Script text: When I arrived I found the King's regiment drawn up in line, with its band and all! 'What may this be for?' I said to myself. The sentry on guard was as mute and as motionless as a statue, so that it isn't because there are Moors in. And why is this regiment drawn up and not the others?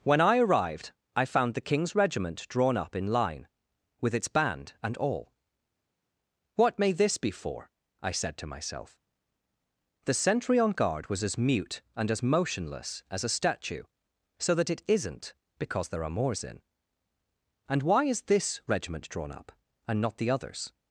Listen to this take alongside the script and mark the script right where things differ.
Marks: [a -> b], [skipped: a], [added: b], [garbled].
When I arrived I found the King's regiment drawn up in line, with its band and all! 'What may this be for?' I said to myself. The sentry on guard was as mute and as motionless as a statue, so that it isn't because there are Moors in. And why is this regiment drawn up and not the others?